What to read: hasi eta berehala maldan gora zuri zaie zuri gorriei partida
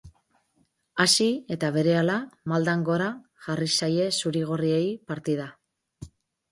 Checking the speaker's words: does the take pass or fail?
fail